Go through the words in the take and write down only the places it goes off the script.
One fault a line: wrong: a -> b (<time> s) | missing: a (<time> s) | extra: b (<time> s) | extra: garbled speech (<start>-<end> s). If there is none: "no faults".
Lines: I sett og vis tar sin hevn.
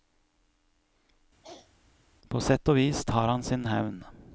wrong: I -> På (2.3 s)
extra: han (3.3 s)